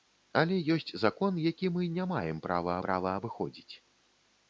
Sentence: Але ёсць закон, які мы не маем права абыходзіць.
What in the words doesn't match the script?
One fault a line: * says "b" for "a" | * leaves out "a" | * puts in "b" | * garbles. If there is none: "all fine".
* puts in "права"